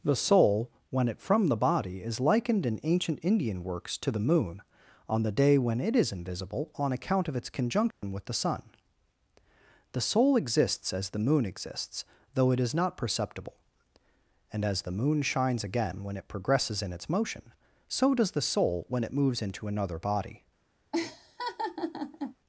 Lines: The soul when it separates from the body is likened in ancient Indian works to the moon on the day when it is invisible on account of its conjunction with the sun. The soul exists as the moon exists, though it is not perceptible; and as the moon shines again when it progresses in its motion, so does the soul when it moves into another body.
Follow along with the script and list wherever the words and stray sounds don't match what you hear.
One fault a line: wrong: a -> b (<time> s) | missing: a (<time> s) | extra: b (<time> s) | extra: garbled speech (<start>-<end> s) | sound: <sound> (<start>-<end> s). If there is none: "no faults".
missing: separates (1.2 s)
sound: dropout (7.9-8.0 s)
sound: laugh (20.9-22.4 s)